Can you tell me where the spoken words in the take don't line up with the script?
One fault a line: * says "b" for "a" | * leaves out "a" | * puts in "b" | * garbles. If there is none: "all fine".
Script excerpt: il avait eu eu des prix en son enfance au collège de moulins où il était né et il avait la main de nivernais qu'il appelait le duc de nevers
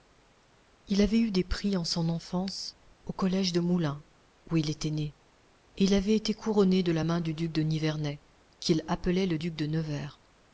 * leaves out "eu"
* puts in "été couronné de"
* puts in "du duc"